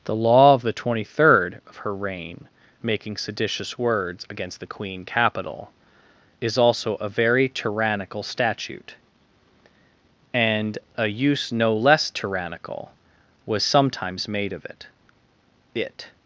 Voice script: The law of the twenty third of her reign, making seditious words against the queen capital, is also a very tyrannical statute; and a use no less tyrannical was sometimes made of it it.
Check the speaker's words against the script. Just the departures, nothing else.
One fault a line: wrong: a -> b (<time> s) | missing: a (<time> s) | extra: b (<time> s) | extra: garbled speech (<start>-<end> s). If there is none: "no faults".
no faults